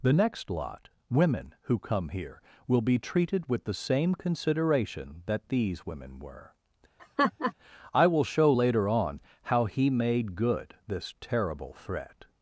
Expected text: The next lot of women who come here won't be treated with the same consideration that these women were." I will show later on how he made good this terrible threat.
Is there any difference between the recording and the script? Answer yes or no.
yes